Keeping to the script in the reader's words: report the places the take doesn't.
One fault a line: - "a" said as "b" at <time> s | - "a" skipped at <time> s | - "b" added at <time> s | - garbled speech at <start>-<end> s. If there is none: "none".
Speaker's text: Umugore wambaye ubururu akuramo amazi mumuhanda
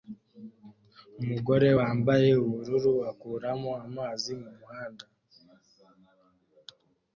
none